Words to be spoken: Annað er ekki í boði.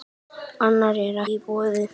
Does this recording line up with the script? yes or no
no